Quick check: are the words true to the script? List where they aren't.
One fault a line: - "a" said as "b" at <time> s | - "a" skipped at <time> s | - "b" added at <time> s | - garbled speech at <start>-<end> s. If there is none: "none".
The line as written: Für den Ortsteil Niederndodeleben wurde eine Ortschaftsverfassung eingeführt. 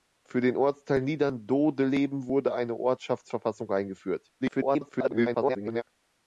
- garbled speech at 4.4-5.8 s